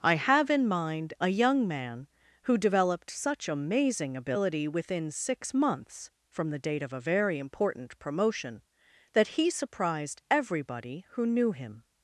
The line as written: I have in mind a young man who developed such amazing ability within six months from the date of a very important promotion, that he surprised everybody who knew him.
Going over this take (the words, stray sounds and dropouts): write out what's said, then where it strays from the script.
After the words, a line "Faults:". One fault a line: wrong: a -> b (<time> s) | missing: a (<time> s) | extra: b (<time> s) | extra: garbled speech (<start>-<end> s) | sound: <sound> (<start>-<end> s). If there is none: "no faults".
I have in mind a young man who developed such amazing ability within six months from the date of a very important promotion, that he surprised everybody who knew him.
Faults:
no faults